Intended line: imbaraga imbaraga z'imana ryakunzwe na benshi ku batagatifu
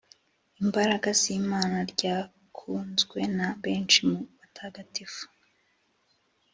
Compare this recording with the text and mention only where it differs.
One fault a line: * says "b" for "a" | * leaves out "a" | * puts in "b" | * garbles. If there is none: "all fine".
* leaves out "imbaraga"
* says "mu" for "ku"